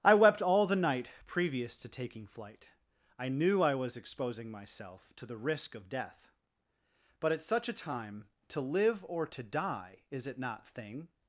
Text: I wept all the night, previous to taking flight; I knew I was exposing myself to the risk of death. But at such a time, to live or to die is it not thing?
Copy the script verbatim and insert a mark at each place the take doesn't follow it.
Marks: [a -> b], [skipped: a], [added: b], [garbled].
I wept all the night, previous to taking flight; I knew I was exposing myself to the risk of death. But at such a time, to live or to die is it not thing?